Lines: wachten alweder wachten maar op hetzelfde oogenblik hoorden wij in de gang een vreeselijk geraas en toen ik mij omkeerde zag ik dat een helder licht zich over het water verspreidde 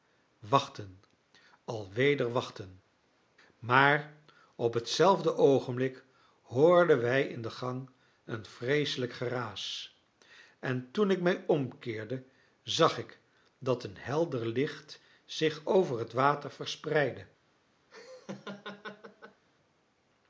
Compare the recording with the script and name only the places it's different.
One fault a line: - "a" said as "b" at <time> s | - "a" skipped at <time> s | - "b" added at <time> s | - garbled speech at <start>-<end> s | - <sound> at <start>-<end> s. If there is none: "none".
- laugh at 17.9-19.4 s